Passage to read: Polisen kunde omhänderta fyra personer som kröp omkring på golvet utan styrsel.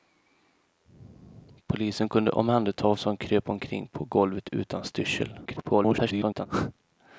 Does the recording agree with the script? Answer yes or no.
no